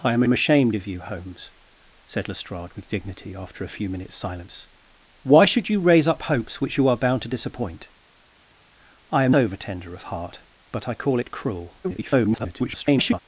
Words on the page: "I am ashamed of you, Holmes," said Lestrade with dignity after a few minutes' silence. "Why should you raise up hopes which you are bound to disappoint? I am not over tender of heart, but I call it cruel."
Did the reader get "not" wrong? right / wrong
wrong